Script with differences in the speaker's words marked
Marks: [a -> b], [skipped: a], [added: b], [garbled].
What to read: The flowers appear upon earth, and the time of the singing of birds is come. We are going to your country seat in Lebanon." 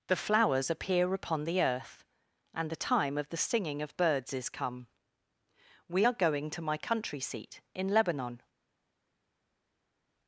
The flowers appear upon [added: the] earth, and the time of the singing of birds is come. We are going to [your -> my] country seat in Lebanon."